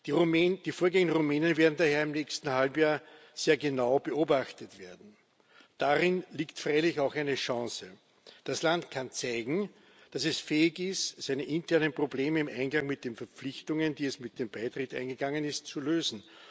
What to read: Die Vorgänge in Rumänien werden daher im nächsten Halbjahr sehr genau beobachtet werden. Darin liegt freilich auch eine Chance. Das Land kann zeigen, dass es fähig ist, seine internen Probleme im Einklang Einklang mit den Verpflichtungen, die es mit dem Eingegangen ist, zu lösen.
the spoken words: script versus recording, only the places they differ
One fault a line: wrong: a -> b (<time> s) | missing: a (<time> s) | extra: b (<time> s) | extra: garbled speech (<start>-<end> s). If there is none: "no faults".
missing: Einklang (12.9 s)
extra: Beitritt (14.5 s)